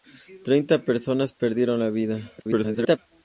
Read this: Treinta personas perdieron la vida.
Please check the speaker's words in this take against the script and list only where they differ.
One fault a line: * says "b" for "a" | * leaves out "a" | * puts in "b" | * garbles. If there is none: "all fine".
* garbles